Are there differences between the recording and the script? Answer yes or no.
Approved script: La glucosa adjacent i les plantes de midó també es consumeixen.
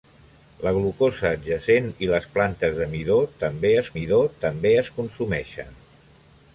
yes